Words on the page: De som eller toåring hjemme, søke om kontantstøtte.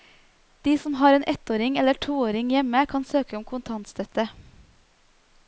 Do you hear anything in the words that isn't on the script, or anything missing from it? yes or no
yes